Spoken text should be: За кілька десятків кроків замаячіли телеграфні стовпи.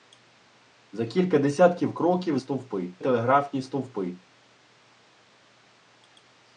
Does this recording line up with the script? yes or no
no